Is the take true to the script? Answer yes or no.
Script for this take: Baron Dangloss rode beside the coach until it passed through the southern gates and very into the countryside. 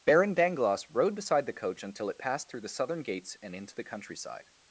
no